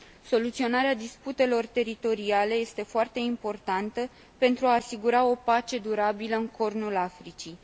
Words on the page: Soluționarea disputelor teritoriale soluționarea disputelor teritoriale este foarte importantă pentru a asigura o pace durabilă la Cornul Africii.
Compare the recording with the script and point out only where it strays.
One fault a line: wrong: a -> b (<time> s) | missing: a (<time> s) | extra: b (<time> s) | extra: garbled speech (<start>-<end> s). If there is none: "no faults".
missing: soluționarea disputelor teritoriale (2.5 s)
wrong: la -> în (6.3 s)